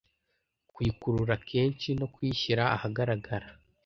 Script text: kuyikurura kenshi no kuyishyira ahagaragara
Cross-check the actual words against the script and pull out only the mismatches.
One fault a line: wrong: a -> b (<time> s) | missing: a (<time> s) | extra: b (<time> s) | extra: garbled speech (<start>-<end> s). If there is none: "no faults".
no faults